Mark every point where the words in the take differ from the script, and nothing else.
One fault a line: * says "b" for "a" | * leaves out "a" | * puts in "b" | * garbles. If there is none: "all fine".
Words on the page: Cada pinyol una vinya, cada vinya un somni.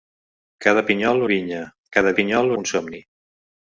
* leaves out "una"
* says "pinyol" for "vinya"